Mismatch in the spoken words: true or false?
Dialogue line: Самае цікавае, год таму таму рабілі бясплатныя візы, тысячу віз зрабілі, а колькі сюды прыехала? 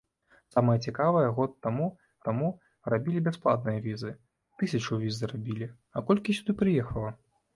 false